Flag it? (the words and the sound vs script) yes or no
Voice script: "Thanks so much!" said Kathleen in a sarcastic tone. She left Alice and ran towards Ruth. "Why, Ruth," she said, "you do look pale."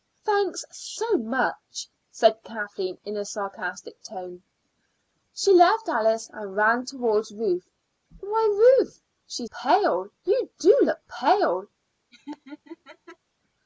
yes